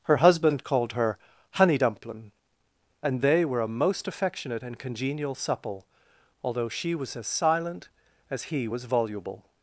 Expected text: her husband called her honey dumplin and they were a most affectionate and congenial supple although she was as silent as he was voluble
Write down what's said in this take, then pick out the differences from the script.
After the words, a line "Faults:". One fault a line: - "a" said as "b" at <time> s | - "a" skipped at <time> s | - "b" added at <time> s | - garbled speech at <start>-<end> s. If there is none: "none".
her husband called her honey dumplin and they were a most affectionate and congenial supple although she was as silent as he was voluble
Faults:
none